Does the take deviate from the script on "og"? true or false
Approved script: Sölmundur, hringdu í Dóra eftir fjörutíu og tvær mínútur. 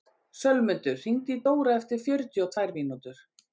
false